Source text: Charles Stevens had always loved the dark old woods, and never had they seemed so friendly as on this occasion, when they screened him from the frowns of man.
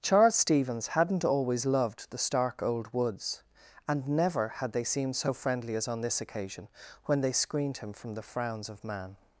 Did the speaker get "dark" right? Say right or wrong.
wrong